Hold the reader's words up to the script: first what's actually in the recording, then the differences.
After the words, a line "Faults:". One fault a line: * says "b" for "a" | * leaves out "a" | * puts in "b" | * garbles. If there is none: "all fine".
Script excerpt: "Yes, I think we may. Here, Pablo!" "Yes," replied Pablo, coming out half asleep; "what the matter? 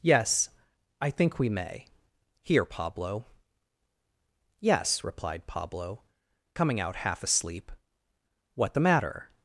"Yes, I think we may. Here, Pablo!" "Yes," replied Pablo, coming out half asleep; "what the matter?
Faults:
all fine